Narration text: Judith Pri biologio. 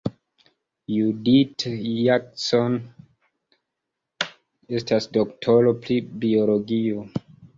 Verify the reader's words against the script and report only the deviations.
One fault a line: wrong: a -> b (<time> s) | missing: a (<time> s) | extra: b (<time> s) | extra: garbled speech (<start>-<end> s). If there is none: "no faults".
extra: Jackson estas doktoro (2.0 s)